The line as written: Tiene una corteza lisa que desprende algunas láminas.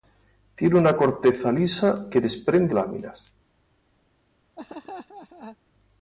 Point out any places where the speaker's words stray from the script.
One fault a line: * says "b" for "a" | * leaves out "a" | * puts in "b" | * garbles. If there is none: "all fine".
* leaves out "algunas"